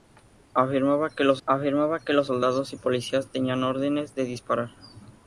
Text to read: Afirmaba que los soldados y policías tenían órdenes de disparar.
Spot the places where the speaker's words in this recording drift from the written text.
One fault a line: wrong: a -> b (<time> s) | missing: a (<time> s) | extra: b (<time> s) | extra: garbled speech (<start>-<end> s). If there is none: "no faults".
extra: afirmaba que los (1.5 s)